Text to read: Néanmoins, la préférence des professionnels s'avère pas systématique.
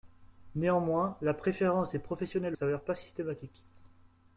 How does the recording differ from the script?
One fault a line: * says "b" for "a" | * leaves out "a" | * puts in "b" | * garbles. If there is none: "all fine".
all fine